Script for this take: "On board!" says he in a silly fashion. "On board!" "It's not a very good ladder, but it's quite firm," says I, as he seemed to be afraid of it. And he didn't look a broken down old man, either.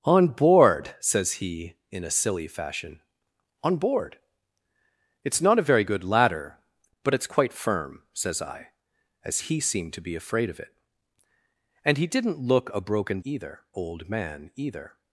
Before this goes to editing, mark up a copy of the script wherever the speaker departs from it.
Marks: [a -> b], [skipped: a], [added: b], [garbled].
"On board!" says he in a silly fashion. "On board!" "It's not a very good ladder, but it's quite firm," says I, as he seemed to be afraid of it. And he didn't look a broken [down -> either] old man, either.